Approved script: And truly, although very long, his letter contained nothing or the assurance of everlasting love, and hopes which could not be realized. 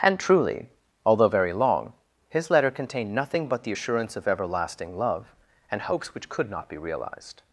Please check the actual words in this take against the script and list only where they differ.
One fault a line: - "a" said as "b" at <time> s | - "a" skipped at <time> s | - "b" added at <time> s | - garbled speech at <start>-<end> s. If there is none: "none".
- "or" said as "but" at 3.5 s